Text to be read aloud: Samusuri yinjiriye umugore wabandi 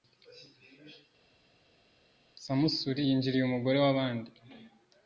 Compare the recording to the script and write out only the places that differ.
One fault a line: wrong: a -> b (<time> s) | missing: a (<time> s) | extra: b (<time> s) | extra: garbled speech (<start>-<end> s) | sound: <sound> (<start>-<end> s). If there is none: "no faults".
no faults